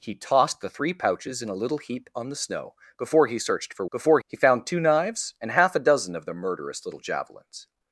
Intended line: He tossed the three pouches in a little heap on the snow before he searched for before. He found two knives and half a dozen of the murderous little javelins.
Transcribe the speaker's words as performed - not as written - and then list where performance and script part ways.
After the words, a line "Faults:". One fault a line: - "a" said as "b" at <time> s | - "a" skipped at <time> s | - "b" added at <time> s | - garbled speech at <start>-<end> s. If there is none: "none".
He tossed the three pouches in a little heap on the snow before he searched for before. He found two knives and half a dozen of the murderous little javelins.
Faults:
none